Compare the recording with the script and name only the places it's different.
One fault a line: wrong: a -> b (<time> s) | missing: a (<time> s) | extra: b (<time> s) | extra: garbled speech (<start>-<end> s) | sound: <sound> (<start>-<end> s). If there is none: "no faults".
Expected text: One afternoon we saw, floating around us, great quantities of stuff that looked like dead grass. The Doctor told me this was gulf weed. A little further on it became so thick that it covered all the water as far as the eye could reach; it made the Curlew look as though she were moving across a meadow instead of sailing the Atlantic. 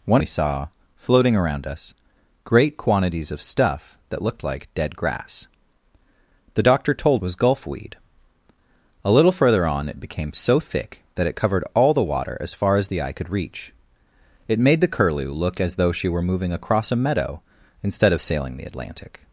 missing: afternoon (0.2 s)
missing: me this (7.2 s)